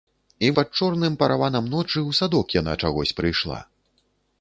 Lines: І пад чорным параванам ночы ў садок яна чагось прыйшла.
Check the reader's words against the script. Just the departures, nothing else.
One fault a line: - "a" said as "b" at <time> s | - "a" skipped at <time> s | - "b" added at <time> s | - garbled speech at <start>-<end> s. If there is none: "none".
none